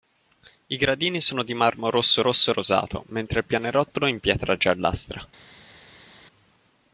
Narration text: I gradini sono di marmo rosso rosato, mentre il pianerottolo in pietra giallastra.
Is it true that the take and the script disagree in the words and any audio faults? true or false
true